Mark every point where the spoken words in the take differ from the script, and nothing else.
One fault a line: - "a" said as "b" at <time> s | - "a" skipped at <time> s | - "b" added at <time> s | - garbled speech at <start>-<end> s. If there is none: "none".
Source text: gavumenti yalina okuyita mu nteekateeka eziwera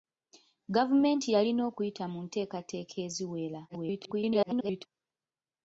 - garbled speech at 3.7-4.9 s